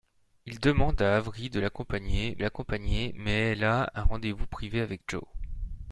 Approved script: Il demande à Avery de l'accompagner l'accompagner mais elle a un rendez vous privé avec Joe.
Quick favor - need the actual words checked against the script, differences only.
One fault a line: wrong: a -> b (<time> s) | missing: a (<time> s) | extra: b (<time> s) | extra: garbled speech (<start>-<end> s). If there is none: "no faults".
no faults